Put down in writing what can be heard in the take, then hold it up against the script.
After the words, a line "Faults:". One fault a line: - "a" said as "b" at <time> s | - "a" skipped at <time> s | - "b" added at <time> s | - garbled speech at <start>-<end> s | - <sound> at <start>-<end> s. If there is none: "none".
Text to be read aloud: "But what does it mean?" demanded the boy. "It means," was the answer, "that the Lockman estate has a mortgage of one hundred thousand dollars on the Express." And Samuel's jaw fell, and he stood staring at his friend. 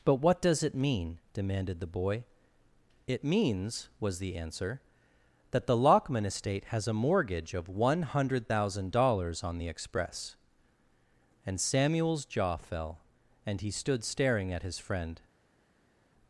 "But what does it mean?" demanded the boy. "It means," was the answer, "that the Lockman estate has a mortgage of one hundred thousand dollars on the Express." And Samuel's jaw fell, and he stood staring at his friend.
Faults:
none